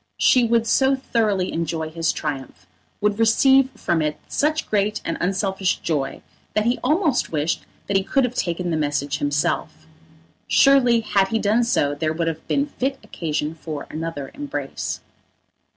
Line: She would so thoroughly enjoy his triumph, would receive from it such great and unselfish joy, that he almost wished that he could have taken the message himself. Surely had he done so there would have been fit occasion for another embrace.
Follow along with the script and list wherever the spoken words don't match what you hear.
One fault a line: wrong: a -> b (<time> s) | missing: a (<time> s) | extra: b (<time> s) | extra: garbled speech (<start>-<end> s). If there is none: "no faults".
no faults